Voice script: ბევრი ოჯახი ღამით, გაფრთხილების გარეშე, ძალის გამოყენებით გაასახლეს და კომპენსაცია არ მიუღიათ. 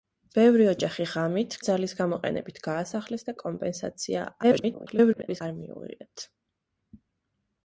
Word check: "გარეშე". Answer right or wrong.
wrong